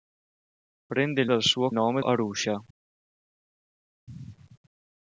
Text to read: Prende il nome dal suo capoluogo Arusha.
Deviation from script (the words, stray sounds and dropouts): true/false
true